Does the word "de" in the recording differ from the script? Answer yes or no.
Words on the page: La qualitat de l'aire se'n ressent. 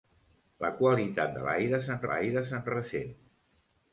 no